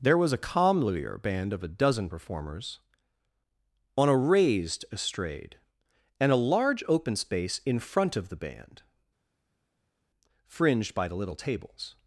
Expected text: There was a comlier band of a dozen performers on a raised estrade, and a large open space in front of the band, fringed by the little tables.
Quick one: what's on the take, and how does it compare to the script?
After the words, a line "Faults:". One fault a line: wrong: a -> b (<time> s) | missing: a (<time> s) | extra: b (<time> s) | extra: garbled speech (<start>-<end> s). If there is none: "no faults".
There was a comlier band of a dozen performers on a raised estrade, and a large open space in front of the band, fringed by the little tables.
Faults:
no faults